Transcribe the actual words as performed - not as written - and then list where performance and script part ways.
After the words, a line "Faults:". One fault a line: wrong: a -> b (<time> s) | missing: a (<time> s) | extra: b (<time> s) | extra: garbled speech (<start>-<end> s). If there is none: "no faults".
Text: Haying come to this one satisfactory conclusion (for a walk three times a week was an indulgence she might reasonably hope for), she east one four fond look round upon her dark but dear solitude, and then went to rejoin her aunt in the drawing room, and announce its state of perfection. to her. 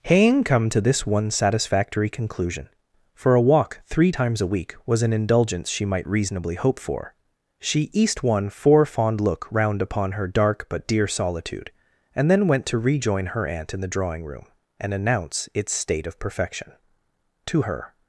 Haying come to this one satisfactory conclusion (for a walk three times a week was an indulgence she might reasonably hope for), she east one four fond look round upon her dark but dear solitude, and then went to rejoin her aunt in the drawing room, and announce its state of perfection. to her.
Faults:
no faults